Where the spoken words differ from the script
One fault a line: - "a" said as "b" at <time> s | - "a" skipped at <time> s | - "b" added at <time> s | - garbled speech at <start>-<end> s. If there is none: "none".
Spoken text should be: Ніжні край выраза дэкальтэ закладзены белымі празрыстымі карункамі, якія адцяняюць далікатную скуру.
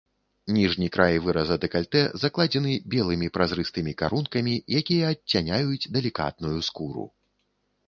none